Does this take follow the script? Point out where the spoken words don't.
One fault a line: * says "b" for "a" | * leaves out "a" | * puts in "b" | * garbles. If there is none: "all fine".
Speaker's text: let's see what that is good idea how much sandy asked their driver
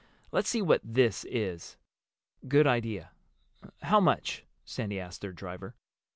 * says "this" for "that"